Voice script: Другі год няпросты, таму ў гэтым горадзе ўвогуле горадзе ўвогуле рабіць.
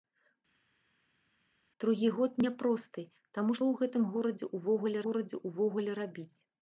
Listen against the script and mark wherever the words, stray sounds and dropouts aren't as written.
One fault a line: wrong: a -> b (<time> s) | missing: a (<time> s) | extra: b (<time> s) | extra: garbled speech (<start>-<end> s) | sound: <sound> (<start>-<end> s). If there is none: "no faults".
no faults